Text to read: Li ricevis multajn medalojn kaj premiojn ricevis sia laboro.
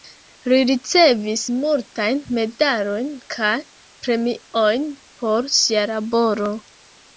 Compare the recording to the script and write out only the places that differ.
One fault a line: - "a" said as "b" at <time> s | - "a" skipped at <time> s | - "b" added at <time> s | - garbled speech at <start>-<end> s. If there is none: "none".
- "ricevis" said as "por" at 5.3 s